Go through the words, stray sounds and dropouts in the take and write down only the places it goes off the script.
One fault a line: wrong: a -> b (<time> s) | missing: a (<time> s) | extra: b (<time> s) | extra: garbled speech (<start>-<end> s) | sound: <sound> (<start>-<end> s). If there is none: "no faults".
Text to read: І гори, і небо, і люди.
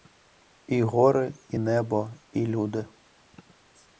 no faults